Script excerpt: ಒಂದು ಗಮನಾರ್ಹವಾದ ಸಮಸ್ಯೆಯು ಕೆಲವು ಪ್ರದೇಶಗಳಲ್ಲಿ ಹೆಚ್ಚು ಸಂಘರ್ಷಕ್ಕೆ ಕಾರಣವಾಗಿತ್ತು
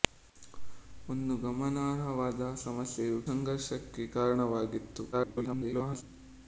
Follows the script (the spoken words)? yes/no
no